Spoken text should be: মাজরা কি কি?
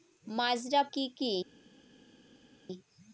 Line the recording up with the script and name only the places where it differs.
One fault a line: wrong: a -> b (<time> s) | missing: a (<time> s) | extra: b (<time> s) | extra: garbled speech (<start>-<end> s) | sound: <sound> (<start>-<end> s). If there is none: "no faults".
no faults